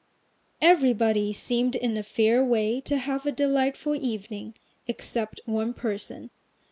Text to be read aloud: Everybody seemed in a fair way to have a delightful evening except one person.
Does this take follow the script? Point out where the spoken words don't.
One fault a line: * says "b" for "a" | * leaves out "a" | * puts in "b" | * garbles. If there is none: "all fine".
all fine